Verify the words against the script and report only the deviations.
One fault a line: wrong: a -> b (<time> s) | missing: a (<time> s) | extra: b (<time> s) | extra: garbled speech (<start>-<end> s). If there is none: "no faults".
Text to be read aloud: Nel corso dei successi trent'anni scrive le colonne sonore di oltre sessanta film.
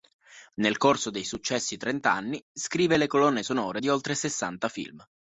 no faults